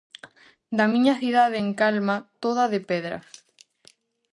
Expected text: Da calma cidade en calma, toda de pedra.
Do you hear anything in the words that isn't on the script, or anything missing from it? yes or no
yes